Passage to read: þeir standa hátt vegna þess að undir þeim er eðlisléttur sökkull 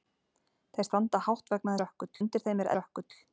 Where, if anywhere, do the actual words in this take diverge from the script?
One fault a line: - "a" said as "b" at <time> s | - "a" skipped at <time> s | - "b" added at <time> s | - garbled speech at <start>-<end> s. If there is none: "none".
- "þess" said as "sökkull" at 1.8 s
- "eðlisléttur" skipped at 2.7 s